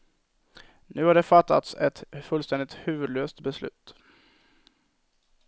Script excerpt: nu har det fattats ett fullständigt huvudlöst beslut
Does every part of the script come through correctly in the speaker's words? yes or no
yes